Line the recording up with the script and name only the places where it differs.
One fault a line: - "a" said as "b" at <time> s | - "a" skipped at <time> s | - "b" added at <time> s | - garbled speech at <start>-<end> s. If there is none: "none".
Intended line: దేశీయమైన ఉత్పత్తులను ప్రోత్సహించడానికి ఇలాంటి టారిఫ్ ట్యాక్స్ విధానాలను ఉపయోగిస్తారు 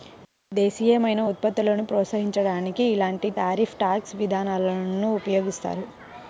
none